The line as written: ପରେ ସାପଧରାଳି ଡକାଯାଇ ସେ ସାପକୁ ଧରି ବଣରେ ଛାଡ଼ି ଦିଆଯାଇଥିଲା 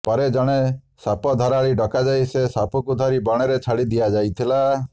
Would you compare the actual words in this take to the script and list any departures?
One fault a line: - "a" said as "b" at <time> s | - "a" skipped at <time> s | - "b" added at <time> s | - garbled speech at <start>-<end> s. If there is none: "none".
- "ଜଣେ" added at 0.3 s